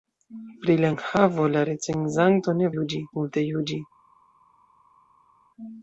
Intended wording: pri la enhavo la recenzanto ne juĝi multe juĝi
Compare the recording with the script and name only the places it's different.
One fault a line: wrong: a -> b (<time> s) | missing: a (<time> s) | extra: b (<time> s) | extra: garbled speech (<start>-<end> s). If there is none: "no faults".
no faults